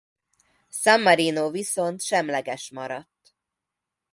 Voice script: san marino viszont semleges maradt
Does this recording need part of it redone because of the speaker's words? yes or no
no